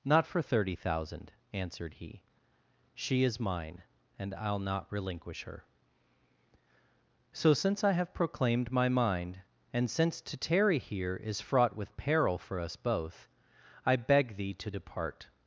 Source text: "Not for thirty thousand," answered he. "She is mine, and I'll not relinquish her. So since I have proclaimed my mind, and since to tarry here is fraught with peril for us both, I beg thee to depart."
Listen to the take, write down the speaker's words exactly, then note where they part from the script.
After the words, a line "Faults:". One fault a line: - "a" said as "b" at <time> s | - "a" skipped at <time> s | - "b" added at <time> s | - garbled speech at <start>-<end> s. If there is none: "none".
"Not for thirty thousand," answered he. "She is mine, and I'll not relinquish her. So since I have proclaimed my mind, and since to tarry here is fraught with peril for us both, I beg thee to depart."
Faults:
none